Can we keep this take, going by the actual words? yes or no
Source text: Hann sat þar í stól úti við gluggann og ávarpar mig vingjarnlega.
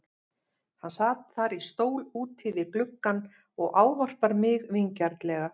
yes